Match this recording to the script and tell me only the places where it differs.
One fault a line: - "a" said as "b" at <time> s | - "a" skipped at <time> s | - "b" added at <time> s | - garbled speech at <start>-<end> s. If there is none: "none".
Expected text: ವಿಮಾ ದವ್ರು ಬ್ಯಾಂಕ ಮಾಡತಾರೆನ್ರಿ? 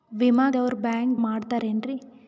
none